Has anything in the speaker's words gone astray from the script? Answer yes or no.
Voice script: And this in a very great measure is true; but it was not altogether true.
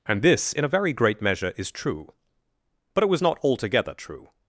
no